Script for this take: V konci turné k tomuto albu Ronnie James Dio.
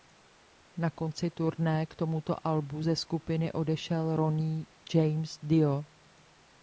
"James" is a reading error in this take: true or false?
false